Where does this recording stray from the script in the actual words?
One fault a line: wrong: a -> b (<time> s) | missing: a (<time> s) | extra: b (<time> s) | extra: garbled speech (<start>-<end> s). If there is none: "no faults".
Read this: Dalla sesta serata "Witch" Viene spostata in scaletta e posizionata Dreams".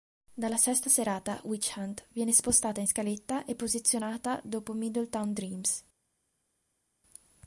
extra: Hunt (1.8 s)
extra: dopo Middletown (4.4 s)